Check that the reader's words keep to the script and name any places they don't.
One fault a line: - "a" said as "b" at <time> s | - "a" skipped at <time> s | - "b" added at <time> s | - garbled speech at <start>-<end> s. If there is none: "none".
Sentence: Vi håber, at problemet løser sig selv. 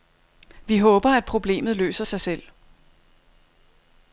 none